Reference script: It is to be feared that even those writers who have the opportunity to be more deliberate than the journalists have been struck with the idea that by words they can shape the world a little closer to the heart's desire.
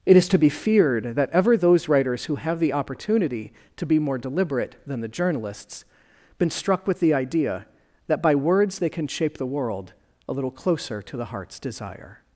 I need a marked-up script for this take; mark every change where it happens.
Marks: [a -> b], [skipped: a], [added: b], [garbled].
It is to be feared that [even -> ever] those writers who have the opportunity to be more deliberate than the journalists [skipped: have] been struck with the idea that by words they can shape the world a little closer to the heart's desire.